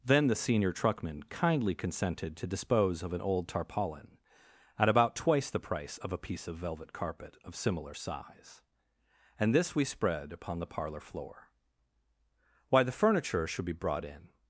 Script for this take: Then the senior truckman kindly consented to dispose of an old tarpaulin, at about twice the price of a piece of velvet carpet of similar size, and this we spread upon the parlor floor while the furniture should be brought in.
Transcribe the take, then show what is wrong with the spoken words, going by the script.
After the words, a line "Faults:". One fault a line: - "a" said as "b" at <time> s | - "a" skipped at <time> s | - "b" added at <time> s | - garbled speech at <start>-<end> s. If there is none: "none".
Then the senior truckman kindly consented to dispose of an old tarpaulin, at about twice the price of a piece of velvet carpet of similar size, and this we spread upon the parlor floor why the furniture should be brought in.
Faults:
- "while" said as "why" at 12.7 s